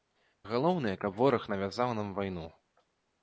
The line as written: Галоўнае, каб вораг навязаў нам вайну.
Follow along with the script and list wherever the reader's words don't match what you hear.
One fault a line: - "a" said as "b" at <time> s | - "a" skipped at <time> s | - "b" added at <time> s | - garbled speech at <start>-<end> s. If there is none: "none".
none